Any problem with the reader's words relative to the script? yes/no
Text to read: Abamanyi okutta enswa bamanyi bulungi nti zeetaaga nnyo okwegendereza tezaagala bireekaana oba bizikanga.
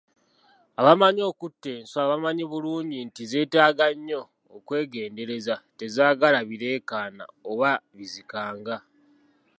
no